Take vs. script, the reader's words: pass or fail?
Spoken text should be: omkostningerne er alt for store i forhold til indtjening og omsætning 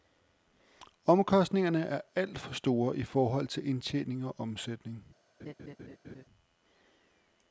pass